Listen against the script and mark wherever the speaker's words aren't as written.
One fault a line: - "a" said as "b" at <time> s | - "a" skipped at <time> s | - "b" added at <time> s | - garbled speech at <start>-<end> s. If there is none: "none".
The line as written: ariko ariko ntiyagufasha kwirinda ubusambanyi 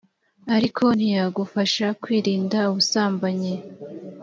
- "ariko" skipped at 0.8 s